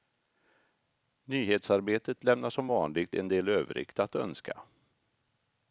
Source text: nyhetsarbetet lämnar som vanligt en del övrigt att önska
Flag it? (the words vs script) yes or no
no